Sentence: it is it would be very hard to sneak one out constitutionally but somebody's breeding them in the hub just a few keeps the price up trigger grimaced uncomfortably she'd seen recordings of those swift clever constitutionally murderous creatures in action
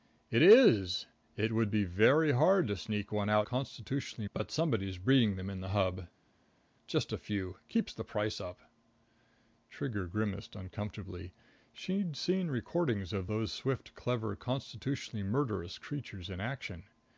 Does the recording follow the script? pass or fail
pass